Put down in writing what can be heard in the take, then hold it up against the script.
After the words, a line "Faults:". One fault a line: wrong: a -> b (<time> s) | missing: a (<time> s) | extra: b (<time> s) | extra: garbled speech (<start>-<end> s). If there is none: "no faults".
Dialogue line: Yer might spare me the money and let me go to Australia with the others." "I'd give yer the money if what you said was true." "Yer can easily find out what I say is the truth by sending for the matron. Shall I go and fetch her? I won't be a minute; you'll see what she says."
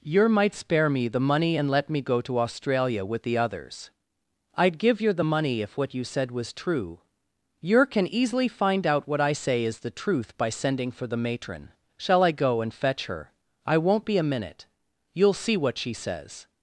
Yer might spare me the money and let me go to Australia with the others." "I'd give yer the money if what you said was true." "Yer can easily find out what I say is the truth by sending for the matron. Shall I go and fetch her? I won't be a minute; you'll see what she says."
Faults:
no faults